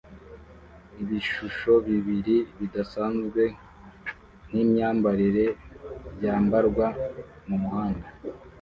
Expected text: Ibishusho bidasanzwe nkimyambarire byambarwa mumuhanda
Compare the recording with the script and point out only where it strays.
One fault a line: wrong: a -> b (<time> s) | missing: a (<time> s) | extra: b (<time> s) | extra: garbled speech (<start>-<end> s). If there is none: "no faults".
extra: bibiri (1.9 s)